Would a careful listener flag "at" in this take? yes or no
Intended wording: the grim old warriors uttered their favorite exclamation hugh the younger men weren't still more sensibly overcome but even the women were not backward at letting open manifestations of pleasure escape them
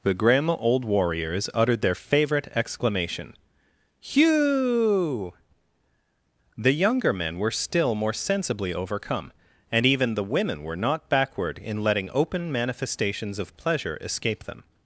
yes